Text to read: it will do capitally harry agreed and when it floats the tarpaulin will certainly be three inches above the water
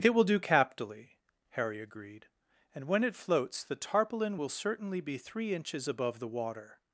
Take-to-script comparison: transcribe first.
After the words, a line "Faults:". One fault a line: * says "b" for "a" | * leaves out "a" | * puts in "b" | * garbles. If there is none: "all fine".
it will do capitally harry agreed and when it floats the tarpaulin will certainly be three inches above the water
Faults:
all fine